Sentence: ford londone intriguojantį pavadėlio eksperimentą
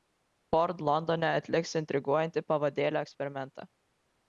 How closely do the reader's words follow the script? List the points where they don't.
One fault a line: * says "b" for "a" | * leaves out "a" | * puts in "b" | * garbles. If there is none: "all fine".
* puts in "atliks"